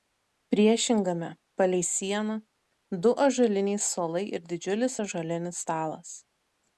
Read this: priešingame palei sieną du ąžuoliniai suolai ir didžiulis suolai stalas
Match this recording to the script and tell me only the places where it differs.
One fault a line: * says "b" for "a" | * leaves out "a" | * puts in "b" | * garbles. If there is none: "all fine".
* says "ąžuolinis" for "suolai"